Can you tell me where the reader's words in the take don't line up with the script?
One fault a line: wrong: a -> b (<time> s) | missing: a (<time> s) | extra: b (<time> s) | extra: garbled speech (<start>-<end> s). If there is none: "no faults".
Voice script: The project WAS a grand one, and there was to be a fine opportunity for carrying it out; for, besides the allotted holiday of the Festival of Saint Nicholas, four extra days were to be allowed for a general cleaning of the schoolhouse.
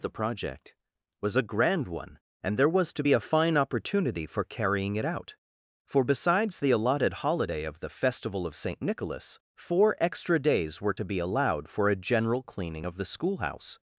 no faults